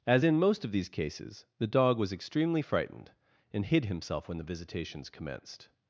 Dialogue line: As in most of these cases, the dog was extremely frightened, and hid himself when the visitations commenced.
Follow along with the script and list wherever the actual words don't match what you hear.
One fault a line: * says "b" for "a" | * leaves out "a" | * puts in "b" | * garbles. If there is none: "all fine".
all fine